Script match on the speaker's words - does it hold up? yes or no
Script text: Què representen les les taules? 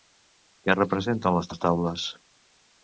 yes